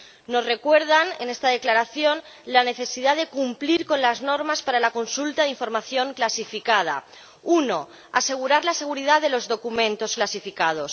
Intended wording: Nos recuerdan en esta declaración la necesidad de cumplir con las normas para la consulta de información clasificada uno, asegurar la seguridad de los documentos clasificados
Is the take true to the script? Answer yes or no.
yes